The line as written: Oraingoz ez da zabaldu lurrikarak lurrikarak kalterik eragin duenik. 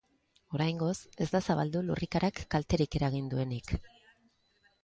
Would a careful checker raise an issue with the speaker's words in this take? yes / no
yes